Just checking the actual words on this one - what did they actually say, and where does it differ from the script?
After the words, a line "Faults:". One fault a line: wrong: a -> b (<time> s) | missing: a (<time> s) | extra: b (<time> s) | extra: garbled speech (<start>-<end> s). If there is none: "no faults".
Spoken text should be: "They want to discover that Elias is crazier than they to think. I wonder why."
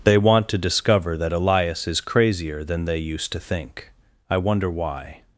"They want to discover that Elias is crazier than they used to think. I wonder why."
Faults:
extra: used (3.0 s)